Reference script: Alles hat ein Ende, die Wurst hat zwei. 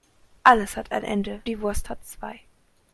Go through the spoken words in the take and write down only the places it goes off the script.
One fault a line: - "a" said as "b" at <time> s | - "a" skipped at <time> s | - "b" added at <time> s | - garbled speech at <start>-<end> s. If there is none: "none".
none